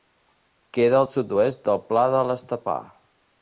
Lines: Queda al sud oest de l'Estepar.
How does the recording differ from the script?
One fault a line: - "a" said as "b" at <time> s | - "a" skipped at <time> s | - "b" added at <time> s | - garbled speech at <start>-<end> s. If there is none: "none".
- "del Pla" added at 1.7 s